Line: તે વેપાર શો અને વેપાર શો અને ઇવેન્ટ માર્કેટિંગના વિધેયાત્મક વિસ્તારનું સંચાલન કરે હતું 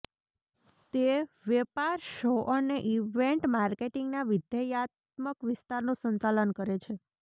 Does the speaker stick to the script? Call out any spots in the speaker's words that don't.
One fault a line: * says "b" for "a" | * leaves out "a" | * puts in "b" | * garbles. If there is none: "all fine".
* leaves out "વેપાર શો અને"
* says "છે" for "હતું"